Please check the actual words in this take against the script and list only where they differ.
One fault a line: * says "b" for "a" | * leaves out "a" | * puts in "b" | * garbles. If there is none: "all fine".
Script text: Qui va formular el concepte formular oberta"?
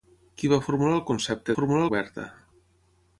all fine